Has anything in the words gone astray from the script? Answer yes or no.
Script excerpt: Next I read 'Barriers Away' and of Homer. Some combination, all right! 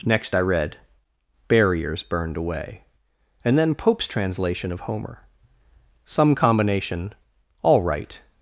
yes